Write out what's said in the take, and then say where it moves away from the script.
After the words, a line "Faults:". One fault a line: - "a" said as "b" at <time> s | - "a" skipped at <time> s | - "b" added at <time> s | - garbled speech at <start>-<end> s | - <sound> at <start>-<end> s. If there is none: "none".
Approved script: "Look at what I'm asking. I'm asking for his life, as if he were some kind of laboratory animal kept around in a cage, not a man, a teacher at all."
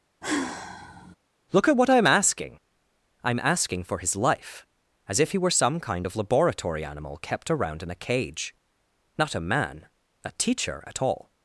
"Look at what I'm asking. I'm asking for his life, as if he were some kind of laboratory animal kept around in a cage, not a man, a teacher at all."
Faults:
- sigh at 0.2-1.2 s